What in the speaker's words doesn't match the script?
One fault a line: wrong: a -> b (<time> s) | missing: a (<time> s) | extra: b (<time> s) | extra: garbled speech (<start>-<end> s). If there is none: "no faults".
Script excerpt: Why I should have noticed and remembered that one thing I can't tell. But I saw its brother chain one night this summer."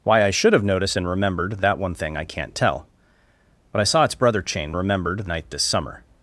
wrong: one -> remembered (4.8 s)